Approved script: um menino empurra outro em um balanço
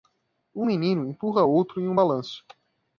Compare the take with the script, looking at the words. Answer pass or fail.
pass